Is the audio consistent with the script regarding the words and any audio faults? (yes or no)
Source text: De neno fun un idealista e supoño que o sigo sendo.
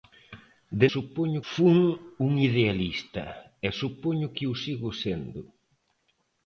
no